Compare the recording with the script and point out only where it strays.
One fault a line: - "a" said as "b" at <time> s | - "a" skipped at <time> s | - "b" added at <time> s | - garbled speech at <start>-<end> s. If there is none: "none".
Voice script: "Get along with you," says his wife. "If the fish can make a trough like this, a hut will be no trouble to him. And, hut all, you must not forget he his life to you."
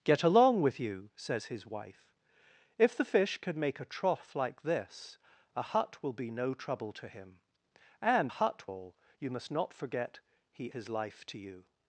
none